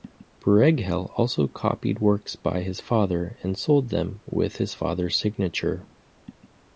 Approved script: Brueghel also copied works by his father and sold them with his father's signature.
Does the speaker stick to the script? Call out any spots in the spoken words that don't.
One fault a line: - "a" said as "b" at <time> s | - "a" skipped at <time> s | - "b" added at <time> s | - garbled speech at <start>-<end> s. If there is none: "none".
none